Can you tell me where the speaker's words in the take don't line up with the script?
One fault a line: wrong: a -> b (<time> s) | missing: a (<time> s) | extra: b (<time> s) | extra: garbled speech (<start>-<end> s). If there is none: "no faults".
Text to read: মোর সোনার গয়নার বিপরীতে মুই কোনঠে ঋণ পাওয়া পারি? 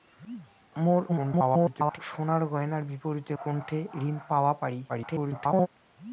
extra: garbled speech (1.1-2.0 s)
missing: মুই (3.3 s)
extra: garbled speech (4.9-5.7 s)